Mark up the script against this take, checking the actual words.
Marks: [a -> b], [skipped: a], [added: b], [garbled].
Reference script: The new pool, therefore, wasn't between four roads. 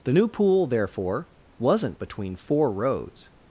The new pool, therefore, wasn't between four roads.